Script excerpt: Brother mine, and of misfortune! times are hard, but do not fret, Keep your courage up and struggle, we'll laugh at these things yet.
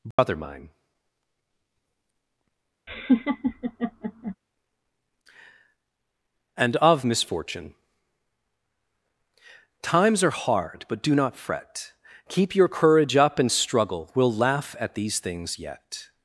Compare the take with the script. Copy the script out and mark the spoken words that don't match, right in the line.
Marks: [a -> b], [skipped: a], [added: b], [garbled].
Brother mine, and of misfortune! times are hard, but do not fret, Keep your courage up and struggle, we'll laugh at these things yet.